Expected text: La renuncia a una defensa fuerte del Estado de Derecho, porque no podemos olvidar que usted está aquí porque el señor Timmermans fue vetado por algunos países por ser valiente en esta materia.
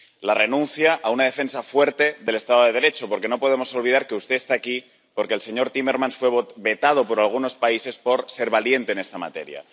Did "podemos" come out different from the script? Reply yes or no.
no